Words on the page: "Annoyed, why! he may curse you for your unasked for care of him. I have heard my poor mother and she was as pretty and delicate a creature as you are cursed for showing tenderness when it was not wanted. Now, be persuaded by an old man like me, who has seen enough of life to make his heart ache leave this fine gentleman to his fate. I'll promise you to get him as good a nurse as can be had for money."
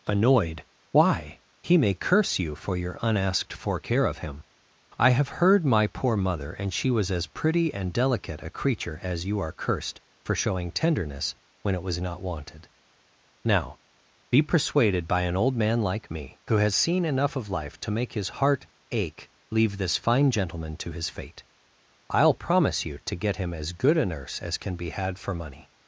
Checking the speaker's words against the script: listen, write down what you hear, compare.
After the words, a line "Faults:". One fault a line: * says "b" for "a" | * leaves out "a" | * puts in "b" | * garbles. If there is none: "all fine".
"Annoyed, why! he may curse you for your unasked for care of him. I have heard my poor mother and she was as pretty and delicate a creature as you are cursed for showing tenderness when it was not wanted. Now, be persuaded by an old man like me, who has seen enough of life to make his heart ache leave this fine gentleman to his fate. I'll promise you to get him as good a nurse as can be had for money."
Faults:
all fine